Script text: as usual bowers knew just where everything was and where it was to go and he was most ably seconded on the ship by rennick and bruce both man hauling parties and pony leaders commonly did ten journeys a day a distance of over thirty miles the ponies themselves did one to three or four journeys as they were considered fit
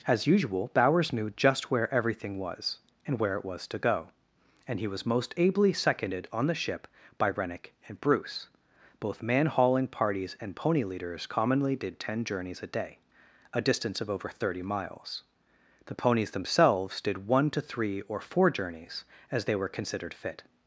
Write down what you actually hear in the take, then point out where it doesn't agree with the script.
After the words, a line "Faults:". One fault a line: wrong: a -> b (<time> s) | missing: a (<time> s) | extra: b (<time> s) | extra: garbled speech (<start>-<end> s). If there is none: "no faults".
as usual bowers knew just where everything was and where it was to go and he was most ably seconded on the ship by rennick and bruce both man hauling parties and pony leaders commonly did ten journeys a day a distance of over thirty miles the ponies themselves did one to three or four journeys as they were considered fit
Faults:
no faults